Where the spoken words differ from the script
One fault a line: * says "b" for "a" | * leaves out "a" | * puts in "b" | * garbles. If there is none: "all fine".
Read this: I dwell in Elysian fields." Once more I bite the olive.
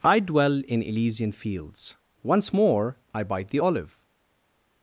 all fine